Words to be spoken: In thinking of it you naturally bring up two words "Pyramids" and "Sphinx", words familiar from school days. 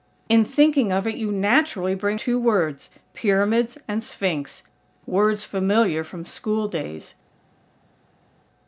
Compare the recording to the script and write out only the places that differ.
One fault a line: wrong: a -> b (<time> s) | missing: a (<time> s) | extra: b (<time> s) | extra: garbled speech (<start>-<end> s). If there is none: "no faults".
missing: up (2.2 s)